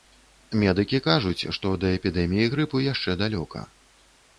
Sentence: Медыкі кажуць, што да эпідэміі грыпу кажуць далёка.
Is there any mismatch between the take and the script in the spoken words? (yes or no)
yes